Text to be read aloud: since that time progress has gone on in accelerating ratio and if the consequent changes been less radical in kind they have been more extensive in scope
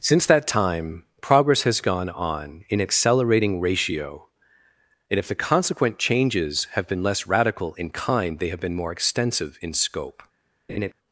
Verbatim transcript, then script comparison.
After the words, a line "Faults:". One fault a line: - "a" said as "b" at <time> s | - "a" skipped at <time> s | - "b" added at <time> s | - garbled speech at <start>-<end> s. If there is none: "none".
since that time progress has gone on in accelerating ratio and if the consequent changes have been less radical in kind they have been more extensive in scope
Faults:
- "have" added at 6.7 s